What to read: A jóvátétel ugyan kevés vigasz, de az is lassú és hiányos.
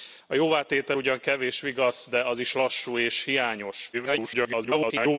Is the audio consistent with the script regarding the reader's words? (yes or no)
no